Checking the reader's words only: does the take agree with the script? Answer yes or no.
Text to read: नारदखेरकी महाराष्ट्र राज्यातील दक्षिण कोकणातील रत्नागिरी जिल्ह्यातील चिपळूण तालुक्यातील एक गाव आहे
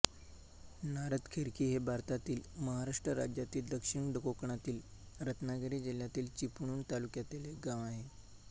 no